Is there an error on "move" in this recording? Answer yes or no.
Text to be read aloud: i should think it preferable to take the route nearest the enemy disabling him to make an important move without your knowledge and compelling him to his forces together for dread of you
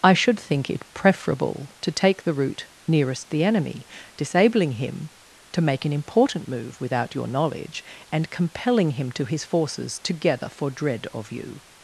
no